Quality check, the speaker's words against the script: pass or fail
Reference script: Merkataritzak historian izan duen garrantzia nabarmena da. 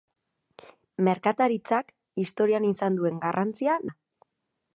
fail